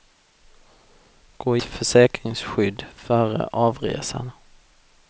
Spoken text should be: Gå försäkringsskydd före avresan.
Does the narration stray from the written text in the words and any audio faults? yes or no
no